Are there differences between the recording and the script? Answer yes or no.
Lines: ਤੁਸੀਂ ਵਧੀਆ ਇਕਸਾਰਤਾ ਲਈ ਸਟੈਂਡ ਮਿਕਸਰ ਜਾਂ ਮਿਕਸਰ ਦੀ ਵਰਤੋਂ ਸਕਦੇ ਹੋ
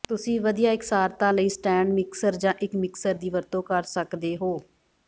yes